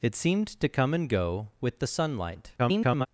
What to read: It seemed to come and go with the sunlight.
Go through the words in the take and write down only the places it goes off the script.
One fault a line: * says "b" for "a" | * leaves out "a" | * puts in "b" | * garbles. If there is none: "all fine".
* garbles